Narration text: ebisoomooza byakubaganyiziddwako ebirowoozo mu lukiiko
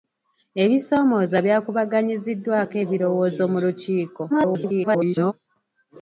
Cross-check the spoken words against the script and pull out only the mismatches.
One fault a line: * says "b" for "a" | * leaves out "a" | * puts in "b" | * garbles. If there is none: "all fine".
* garbles